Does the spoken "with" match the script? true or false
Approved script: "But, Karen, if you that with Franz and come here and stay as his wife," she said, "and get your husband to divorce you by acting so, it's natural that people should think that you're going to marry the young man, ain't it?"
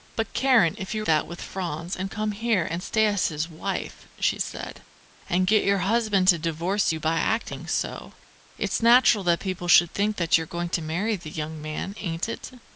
true